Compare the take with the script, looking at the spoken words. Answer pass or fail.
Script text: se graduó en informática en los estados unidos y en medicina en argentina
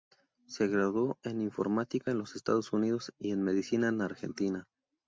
pass